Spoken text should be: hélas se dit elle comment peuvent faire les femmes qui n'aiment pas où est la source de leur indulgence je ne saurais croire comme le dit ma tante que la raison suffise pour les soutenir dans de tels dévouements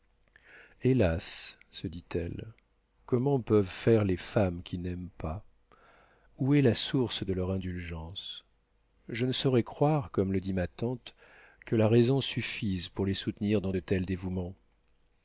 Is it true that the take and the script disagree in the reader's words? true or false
false